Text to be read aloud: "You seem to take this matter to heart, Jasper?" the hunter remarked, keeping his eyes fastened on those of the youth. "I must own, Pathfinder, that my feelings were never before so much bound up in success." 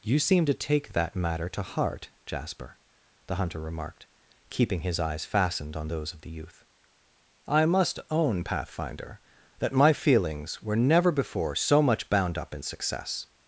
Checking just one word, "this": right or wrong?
wrong